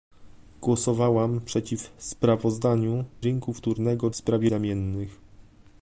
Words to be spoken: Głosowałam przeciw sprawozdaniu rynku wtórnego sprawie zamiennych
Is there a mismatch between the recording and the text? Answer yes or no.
no